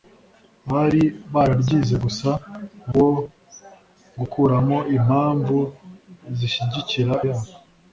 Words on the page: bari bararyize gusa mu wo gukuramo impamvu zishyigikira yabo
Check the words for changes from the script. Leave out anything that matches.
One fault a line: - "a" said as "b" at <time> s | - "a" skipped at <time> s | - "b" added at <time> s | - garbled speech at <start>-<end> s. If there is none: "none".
none